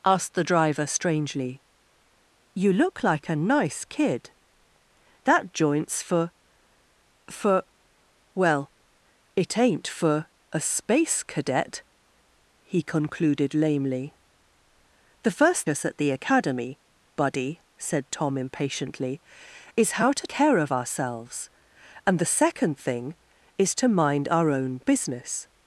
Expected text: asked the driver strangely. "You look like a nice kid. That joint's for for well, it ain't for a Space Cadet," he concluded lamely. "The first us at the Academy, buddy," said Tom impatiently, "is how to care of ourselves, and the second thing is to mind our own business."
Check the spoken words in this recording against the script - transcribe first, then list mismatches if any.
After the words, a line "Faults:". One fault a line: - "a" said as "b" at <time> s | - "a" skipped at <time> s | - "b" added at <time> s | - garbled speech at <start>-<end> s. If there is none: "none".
asked the driver strangely. "You look like a nice kid. That joint's for for well, it ain't for a Space Cadet," he concluded lamely. "The first us at the Academy, buddy," said Tom impatiently, "is how to care of ourselves, and the second thing is to mind our own business."
Faults:
none